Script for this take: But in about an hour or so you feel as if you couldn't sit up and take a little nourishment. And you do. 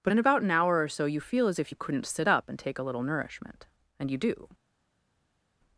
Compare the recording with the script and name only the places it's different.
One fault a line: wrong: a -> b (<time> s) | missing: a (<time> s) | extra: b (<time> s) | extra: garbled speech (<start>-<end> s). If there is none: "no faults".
no faults